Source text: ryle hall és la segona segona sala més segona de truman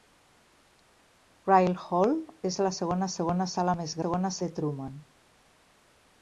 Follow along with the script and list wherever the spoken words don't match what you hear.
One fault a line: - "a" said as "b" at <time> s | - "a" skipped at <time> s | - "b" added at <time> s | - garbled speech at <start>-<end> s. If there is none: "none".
none